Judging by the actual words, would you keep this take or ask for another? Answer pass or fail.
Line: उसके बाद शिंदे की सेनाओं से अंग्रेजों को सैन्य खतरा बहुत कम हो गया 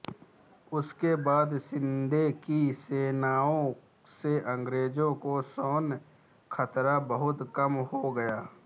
pass